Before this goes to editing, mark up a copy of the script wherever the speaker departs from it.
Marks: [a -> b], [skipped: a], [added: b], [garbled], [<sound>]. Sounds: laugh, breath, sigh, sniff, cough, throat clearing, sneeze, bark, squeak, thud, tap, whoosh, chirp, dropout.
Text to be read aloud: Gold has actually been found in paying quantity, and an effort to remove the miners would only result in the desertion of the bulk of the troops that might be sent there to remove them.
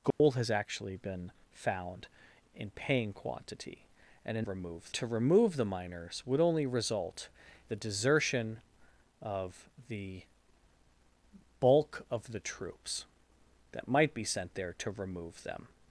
Gold [dropout] has actually been found in paying quantity, and an [effort -> remove] to remove the miners would only result [skipped: in] the desertion of the bulk of the troops that might be sent there to remove them.